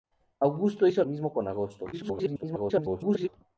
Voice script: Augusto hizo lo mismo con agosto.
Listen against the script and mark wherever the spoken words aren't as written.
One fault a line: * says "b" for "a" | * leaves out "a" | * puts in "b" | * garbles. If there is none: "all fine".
* leaves out "lo"
* garbles